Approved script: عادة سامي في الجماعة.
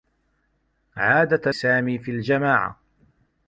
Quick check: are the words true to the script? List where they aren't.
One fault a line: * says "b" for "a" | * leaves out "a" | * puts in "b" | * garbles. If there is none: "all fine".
all fine